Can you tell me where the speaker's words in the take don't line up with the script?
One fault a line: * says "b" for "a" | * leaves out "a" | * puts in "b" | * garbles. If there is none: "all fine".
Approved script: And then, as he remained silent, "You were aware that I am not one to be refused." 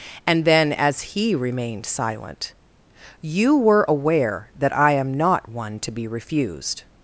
all fine